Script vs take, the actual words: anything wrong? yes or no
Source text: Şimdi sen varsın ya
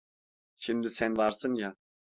no